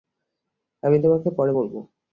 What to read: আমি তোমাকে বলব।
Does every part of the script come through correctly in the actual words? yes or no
no